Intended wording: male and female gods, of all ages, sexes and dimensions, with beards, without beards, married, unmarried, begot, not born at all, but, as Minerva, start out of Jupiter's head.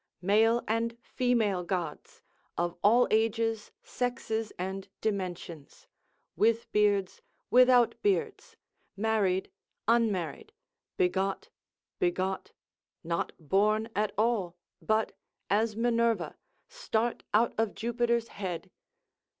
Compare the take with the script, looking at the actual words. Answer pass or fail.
fail